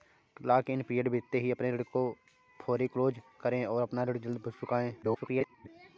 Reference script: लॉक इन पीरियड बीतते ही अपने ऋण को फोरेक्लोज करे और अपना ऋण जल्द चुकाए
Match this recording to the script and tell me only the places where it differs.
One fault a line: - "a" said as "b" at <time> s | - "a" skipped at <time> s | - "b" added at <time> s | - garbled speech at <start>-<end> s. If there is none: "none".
- garbled speech at 5.0-5.7 s